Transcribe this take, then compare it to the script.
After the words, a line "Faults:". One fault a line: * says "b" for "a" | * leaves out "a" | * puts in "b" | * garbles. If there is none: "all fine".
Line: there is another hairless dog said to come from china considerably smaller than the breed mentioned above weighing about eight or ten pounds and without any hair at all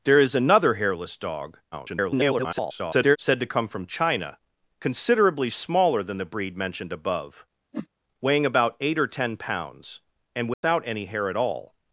there is another hairless dog [garbled] said to come from china considerably smaller than the breed mentioned above weighing about eight or ten pounds and without any hair at all
Faults:
* garbles